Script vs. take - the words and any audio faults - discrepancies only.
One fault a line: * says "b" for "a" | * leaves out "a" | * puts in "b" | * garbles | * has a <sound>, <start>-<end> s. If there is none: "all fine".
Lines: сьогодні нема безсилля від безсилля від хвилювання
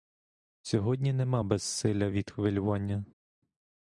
* leaves out "безсилля від"